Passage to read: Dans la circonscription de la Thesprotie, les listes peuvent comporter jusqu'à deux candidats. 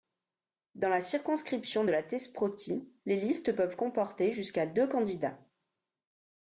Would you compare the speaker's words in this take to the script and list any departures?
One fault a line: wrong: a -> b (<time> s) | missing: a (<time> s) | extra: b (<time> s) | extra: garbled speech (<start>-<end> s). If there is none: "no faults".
no faults